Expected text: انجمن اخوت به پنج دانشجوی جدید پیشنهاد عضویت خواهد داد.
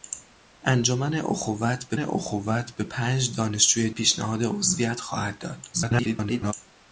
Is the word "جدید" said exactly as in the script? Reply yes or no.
no